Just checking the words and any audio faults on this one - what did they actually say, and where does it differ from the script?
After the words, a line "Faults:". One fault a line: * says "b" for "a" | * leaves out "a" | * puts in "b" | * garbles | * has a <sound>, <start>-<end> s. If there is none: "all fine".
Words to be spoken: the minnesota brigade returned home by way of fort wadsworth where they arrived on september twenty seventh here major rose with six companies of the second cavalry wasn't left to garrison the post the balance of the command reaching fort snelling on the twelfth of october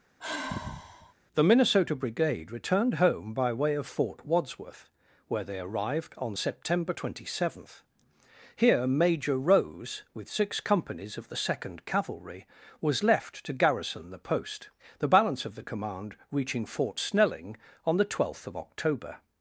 the minnesota brigade returned home by way of fort wadsworth where they arrived on september twenty seventh here major rose with six companies of the second cavalry was left to garrison the post the balance of the command reaching fort snelling on the twelfth of october
Faults:
* has a sigh, 0.2-1.1 s
* says "was" for "wasn't"